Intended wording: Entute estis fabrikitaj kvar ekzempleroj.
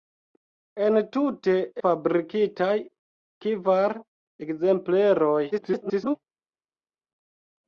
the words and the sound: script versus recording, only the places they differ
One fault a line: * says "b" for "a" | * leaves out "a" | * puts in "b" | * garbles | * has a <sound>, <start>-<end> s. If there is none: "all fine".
* leaves out "estis"
* garbles